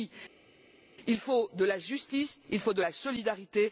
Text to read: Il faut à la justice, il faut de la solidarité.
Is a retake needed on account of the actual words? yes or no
yes